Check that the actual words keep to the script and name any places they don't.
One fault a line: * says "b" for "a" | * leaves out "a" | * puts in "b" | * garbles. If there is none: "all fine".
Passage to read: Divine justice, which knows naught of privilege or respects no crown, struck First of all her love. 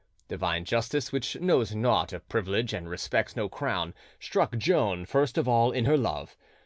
* says "and" for "or"
* puts in "Joan"
* puts in "in"